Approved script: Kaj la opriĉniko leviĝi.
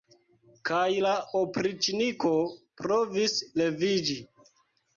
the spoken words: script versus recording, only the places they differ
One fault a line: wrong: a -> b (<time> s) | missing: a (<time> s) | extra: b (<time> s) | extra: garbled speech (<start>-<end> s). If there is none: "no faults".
extra: provis (2.8 s)